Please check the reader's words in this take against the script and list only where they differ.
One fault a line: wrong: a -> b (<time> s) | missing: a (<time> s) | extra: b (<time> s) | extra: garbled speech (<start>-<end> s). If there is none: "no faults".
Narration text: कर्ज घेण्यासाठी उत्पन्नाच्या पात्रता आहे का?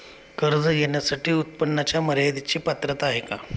extra: मर्यदेची (2.0 s)